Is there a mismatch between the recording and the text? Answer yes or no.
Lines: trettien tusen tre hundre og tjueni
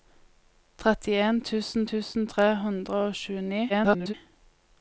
yes